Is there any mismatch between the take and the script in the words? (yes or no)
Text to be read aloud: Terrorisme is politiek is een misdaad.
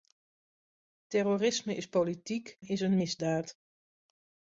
no